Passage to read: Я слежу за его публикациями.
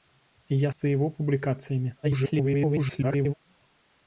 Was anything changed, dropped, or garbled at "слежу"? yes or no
yes